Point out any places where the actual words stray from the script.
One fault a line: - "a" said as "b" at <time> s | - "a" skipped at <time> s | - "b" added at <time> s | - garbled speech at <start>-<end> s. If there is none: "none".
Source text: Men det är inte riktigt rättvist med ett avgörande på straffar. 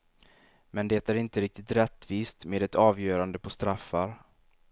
none